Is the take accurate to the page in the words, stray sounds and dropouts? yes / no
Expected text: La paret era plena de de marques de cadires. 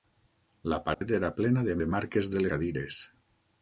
no